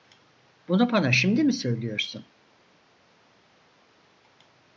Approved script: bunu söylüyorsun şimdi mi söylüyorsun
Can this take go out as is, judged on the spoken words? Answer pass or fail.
fail